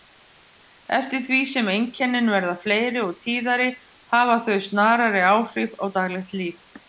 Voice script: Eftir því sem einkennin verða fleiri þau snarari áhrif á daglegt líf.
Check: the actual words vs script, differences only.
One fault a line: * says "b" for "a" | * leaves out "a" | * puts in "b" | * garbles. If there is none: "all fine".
* puts in "og tíðari hafa"